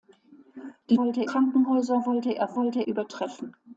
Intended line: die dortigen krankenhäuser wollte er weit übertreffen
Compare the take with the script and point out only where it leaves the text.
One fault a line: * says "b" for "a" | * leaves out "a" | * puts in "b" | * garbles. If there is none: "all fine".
* says "wollte" for "dortigen"
* says "wollte" for "weit"